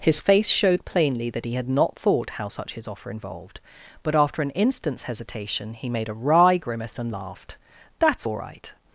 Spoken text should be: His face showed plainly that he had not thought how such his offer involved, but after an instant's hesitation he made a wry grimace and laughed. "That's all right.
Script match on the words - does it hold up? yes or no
yes